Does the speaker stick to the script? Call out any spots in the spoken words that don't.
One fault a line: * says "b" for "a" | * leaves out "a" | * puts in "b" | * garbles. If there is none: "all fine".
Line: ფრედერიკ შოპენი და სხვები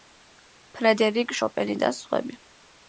all fine